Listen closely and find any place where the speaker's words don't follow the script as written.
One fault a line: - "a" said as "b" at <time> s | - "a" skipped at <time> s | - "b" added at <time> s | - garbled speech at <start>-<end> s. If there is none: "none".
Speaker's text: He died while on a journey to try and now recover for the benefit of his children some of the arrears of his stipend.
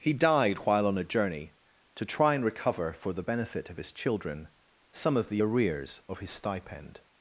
- "now" skipped at 2.4 s